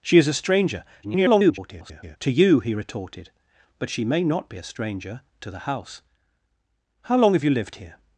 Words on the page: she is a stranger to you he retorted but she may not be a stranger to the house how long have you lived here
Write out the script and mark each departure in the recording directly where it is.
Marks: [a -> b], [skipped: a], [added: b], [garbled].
she is a stranger [garbled] to you he retorted but she may not be a stranger to the house how long have you lived here